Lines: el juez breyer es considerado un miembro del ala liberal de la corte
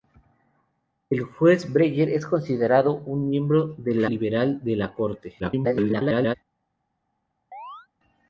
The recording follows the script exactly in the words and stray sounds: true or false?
false